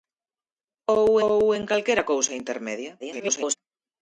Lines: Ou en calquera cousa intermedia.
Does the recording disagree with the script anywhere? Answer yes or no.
yes